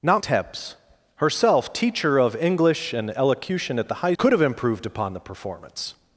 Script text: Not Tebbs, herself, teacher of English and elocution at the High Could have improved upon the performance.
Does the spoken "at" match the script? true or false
true